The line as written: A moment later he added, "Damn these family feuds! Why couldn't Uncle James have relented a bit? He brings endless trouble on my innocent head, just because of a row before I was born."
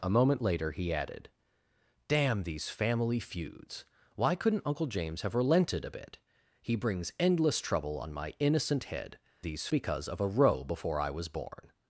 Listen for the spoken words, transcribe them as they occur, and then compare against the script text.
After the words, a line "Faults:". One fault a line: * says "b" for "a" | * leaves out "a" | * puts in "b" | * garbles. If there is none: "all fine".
A moment later he added, "Damn these family feuds! Why couldn't Uncle James have relented a bit? He brings endless trouble on my innocent head, these because of a row before I was born."
Faults:
* says "these" for "just"